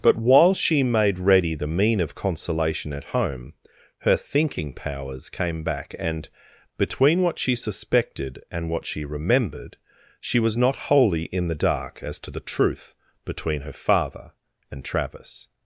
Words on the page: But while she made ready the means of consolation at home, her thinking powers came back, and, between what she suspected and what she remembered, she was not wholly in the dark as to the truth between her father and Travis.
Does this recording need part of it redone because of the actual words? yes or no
yes